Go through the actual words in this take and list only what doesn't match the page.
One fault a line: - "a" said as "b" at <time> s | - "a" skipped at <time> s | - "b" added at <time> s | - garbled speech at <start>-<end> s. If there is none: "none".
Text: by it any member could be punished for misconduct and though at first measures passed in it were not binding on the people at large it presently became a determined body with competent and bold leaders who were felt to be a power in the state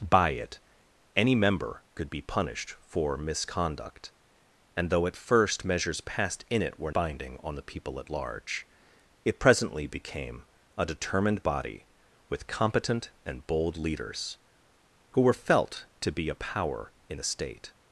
- "not" skipped at 6.9 s